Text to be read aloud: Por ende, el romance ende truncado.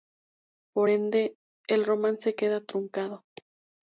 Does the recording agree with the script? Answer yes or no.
no